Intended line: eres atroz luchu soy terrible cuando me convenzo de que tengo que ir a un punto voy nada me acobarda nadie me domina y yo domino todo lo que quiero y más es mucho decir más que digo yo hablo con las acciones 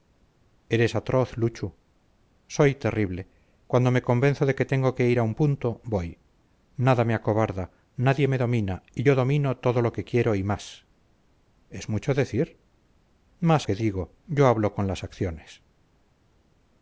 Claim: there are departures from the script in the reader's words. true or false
false